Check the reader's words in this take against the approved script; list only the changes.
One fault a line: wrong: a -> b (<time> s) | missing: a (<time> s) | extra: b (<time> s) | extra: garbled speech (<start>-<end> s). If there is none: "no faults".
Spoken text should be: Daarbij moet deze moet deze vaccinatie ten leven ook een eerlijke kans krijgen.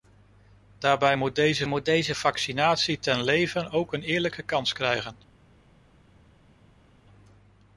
no faults